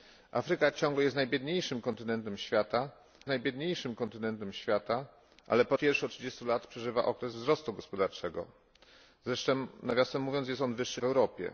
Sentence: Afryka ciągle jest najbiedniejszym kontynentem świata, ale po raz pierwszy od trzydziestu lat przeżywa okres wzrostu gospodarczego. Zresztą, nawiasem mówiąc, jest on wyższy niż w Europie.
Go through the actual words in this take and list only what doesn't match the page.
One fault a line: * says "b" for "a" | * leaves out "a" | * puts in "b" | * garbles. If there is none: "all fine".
* puts in "najbiedniejszym kontynentem świata"
* leaves out "raz"
* leaves out "niż"